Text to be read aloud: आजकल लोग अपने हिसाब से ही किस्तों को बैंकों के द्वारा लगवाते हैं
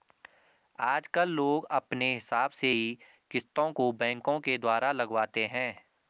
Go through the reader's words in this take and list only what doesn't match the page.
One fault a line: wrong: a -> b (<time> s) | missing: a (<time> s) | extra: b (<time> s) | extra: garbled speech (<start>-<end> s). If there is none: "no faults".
no faults